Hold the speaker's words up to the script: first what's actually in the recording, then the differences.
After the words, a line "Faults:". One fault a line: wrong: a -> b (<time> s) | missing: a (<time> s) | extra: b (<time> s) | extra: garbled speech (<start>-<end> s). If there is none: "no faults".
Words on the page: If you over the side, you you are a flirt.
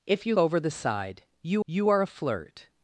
If you over the side, you you are a flirt.
Faults:
no faults